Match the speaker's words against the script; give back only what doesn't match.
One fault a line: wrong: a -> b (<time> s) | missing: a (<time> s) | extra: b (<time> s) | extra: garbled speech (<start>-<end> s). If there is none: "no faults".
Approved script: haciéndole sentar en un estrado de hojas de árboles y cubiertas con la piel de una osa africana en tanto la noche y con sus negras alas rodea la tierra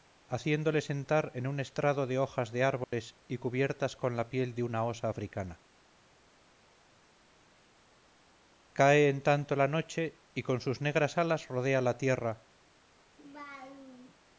extra: cae (8.7 s)